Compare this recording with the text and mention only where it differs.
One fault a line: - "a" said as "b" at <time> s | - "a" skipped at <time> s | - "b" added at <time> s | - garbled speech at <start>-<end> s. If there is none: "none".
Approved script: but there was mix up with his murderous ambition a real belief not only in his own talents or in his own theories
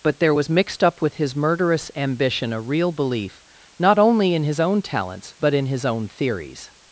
- "mix" said as "mixed" at 0.5 s
- "or" said as "but" at 5.4 s